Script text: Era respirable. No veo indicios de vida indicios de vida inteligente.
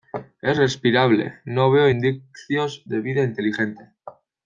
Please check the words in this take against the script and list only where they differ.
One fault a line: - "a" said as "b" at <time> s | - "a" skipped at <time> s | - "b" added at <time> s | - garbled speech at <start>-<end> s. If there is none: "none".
- "Era" said as "Es" at 0.4 s
- "indicios de vida" skipped at 3.2 s